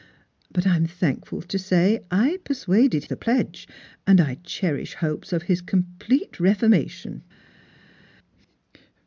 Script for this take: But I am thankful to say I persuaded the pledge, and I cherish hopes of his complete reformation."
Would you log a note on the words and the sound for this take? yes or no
no